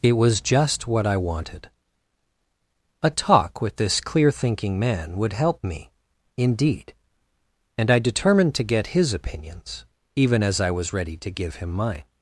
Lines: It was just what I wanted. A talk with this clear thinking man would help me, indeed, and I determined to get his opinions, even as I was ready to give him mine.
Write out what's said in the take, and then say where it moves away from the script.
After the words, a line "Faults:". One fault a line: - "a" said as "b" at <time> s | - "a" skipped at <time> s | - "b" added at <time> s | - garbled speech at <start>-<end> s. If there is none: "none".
It was just what I wanted. A talk with this clear thinking man would help me, indeed, and I determined to get his opinions, even as I was ready to give him mine.
Faults:
none